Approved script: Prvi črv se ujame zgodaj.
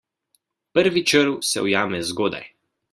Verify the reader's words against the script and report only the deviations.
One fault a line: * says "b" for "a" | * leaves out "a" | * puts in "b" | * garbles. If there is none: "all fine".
all fine